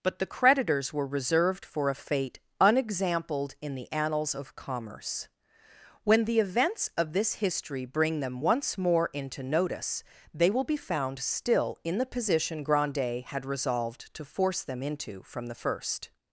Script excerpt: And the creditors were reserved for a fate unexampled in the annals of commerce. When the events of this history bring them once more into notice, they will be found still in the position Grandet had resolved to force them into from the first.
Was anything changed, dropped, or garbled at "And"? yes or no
yes